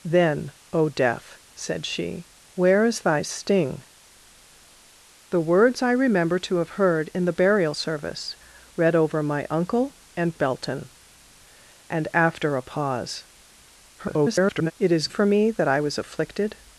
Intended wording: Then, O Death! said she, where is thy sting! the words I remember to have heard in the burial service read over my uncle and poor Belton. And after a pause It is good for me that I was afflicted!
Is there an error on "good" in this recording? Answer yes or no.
yes